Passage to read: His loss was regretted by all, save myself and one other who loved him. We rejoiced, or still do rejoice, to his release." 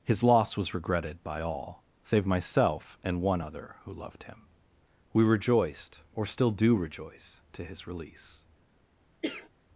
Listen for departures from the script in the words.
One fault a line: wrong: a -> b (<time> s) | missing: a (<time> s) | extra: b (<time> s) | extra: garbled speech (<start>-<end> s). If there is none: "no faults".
no faults